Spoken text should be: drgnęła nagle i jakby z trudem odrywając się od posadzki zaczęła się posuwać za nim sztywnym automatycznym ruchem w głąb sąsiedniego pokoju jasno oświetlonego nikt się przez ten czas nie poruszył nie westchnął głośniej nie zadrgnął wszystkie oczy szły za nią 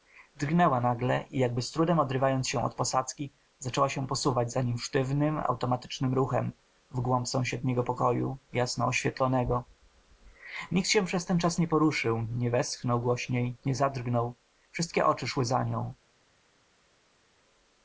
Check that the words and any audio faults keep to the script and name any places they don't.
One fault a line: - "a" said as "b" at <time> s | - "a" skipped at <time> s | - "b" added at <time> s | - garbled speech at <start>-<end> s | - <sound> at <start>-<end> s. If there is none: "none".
none